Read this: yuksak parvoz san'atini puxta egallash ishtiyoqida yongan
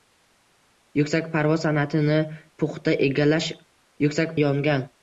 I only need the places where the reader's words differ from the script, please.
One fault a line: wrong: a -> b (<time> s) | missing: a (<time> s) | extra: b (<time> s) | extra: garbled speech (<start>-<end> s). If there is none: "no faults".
wrong: ishtiyoqida -> yuksak (4.0 s)